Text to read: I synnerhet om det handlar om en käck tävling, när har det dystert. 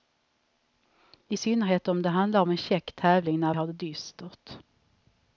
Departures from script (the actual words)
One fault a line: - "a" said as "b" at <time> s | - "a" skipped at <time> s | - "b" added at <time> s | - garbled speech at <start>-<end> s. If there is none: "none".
none